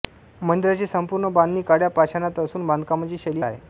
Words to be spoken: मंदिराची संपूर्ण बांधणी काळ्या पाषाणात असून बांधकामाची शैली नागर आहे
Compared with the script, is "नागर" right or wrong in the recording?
wrong